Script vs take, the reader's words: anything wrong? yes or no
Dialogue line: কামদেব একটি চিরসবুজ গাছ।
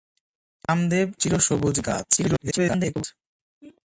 yes